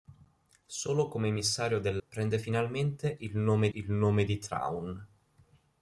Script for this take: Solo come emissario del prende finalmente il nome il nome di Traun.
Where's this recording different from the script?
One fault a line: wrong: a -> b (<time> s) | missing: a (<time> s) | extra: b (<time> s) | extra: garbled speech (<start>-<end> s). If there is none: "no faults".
no faults